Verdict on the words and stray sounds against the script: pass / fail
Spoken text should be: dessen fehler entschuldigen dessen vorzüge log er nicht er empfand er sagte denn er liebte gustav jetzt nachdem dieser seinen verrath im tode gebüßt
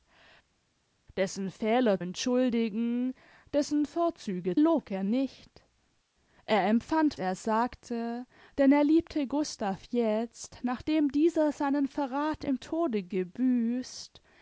pass